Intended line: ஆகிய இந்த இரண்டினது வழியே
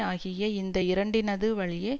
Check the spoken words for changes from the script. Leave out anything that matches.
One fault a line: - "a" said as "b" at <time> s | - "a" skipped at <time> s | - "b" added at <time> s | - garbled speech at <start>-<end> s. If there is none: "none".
none